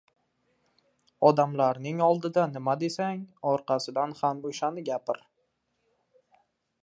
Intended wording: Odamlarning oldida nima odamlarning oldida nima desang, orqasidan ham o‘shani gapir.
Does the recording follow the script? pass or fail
fail